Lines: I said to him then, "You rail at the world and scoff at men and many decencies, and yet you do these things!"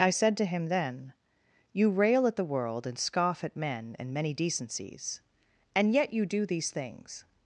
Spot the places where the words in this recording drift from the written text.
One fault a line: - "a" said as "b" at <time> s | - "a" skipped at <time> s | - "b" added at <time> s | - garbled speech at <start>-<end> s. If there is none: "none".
none